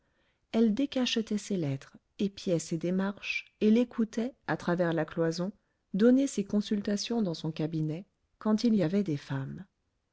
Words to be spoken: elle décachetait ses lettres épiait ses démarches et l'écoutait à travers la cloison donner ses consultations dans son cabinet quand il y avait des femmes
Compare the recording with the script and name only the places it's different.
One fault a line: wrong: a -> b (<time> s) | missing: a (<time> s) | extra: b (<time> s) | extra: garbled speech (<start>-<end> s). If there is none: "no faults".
no faults